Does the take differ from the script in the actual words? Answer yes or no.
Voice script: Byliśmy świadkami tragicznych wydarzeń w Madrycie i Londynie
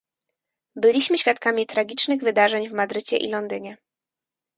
no